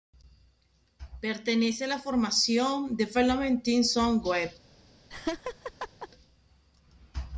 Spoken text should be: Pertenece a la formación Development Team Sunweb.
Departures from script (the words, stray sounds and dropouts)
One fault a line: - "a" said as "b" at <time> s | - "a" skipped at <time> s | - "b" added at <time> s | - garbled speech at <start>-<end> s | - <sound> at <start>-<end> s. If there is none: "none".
- laugh at 5.1-6.1 s